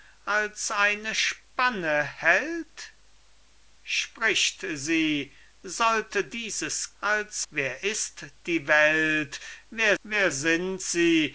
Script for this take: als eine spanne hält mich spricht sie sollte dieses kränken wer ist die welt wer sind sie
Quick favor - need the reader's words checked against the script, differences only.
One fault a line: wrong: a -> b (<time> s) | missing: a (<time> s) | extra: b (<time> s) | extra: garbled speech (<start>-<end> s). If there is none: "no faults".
missing: mich (2.9 s)
wrong: kränken -> als (7.0 s)
extra: wer (10.0 s)